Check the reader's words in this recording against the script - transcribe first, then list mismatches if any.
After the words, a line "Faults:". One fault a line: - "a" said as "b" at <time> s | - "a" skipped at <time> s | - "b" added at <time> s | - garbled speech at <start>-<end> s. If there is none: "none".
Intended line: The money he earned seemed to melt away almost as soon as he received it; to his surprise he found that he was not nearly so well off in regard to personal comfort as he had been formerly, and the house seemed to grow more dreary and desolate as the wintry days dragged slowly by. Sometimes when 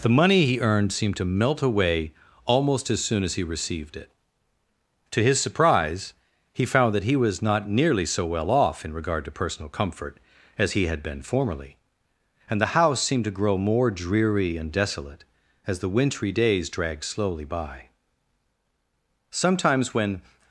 The money he earned seemed to melt away almost as soon as he received it; to his surprise he found that he was not nearly so well off in regard to personal comfort as he had been formerly, and the house seemed to grow more dreary and desolate as the wintry days dragged slowly by. Sometimes when
Faults:
none